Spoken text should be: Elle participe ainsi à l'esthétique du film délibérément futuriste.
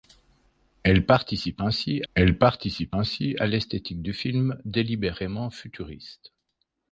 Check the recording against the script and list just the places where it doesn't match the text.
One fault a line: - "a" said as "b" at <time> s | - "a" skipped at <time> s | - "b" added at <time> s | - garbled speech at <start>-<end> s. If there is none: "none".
- "elle participe ainsi" added at 2.1 s